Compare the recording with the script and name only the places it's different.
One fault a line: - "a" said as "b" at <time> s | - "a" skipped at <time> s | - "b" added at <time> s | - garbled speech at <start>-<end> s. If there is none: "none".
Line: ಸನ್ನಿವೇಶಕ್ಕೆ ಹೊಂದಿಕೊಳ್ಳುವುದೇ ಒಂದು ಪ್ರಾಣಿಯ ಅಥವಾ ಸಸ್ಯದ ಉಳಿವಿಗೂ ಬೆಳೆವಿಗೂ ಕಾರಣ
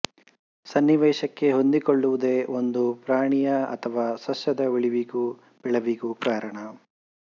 none